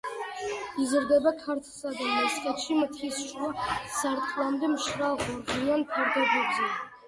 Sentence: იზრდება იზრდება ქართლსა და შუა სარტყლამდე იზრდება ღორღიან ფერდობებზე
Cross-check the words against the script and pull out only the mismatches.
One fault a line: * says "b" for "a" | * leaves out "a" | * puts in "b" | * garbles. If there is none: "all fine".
* leaves out "იზრდება"
* puts in "მესხეთში მთის"
* says "მშრალ" for "იზრდება"